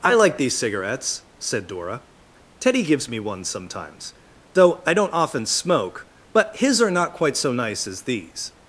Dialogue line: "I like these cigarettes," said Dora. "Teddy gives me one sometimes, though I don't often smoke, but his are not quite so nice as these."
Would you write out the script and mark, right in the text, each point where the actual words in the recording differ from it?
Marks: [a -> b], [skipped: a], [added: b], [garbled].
"I like these cigarettes," said Dora. "Teddy gives me one sometimes, though I don't often smoke, but his are not quite so nice as these."